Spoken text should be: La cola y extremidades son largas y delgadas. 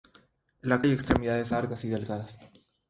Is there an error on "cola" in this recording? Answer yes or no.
yes